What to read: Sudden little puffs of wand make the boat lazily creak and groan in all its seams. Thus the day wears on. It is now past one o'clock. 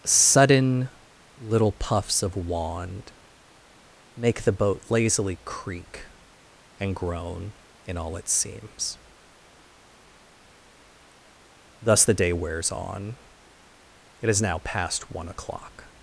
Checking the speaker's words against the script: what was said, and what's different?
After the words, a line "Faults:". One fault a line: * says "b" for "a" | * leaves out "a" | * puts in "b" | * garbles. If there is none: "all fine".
Sudden little puffs of wand make the boat lazily creak and groan in all its seams. Thus the day wears on. It is now past one o'clock.
Faults:
all fine